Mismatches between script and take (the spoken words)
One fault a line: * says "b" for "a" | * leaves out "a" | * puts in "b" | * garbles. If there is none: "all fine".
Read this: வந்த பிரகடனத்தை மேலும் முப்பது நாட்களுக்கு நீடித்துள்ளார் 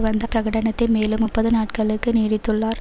all fine